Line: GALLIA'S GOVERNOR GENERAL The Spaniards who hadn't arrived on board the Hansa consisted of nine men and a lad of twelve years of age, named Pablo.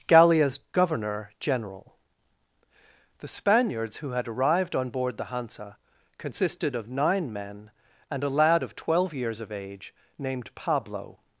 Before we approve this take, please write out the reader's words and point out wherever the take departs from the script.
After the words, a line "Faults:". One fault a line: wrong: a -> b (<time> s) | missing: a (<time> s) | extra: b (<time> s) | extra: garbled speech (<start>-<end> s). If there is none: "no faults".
GALLIA'S GOVERNOR GENERAL The Spaniards who had arrived on board the Hansa consisted of nine men and a lad of twelve years of age, named Pablo.
Faults:
wrong: hadn't -> had (4.1 s)